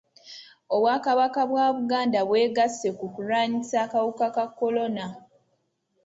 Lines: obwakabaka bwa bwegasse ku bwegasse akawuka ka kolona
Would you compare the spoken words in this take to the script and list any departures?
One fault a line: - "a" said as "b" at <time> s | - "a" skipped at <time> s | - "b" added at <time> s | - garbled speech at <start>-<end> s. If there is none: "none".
- "buganda" added at 1.8 s
- "bwegasse" said as "kulwanyisa" at 3.1 s